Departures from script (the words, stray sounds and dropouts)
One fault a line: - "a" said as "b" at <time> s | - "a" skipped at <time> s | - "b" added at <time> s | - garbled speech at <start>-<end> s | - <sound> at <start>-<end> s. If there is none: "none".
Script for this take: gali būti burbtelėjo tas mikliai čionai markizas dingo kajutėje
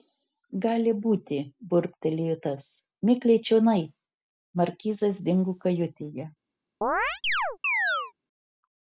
- chirp at 6.8-8.1 s